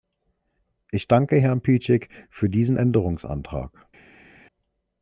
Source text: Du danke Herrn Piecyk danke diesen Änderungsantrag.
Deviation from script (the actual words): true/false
true